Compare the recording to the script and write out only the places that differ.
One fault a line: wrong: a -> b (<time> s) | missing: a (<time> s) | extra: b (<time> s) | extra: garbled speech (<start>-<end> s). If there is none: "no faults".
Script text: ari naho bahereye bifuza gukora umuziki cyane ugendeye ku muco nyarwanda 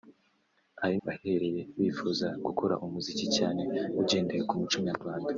missing: naho (1.0 s)